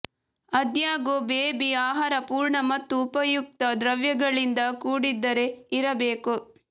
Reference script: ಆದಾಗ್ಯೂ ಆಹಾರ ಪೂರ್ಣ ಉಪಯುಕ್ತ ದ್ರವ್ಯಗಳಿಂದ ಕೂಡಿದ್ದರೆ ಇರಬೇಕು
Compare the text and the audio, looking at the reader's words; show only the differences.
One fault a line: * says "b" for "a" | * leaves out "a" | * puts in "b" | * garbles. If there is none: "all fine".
* puts in "ಬೇಬಿ"
* puts in "ಮತ್ತು"